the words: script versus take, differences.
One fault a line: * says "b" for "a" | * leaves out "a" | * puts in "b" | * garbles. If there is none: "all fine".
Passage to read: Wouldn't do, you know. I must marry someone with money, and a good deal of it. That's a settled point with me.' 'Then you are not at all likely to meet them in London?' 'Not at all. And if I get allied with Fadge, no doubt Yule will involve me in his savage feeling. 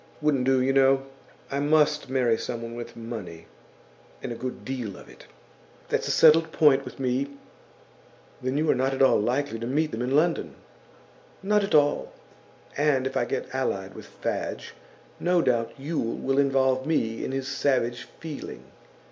all fine